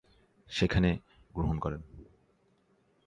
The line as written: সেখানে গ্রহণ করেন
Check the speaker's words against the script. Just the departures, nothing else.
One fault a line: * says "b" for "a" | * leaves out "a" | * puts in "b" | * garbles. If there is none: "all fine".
all fine